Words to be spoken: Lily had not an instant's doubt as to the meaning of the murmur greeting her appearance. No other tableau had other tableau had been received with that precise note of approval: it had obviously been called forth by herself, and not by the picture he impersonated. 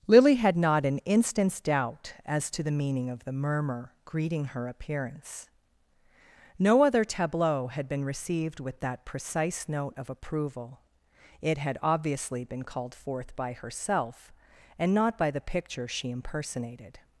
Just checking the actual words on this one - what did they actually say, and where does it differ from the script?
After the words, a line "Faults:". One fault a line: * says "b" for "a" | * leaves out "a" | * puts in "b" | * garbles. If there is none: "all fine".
Lily had not an instant's doubt as to the meaning of the murmur greeting her appearance. No other tableau had been received with that precise note of approval: it had obviously been called forth by herself, and not by the picture she impersonated.
Faults:
* leaves out "other tableau had"
* says "she" for "he"